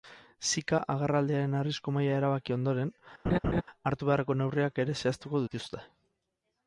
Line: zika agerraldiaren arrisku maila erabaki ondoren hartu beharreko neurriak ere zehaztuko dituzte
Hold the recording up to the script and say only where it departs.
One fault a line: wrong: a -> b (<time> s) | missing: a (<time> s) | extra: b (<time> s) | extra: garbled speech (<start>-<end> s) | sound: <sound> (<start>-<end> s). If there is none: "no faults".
sound: laugh (3.2-3.6 s)